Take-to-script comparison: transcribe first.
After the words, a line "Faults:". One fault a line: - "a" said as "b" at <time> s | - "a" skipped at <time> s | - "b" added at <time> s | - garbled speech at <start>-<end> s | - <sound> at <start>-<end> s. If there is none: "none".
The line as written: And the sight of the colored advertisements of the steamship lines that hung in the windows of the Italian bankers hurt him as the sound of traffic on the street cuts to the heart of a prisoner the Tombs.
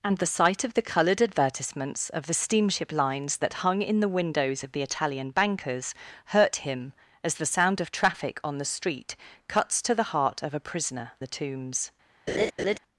And the sight of the colored advertisements of the steamship lines that hung in the windows of the Italian bankers hurt him as the sound of traffic on the street cuts to the heart of a prisoner the Tombs.
Faults:
- laugh at 12.3-12.8 s